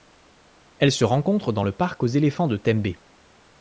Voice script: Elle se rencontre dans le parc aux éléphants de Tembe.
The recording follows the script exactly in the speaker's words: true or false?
true